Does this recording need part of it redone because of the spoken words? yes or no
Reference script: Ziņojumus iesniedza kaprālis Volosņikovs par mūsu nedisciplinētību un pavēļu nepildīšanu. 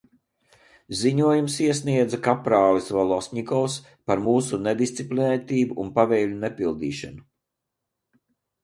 no